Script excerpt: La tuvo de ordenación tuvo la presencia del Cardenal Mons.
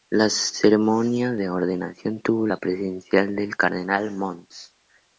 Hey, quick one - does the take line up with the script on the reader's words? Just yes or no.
no